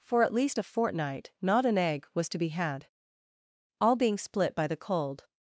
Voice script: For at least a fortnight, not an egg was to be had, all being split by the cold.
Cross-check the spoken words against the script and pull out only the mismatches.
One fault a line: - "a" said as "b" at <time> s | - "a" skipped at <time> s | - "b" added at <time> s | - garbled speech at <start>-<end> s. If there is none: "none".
none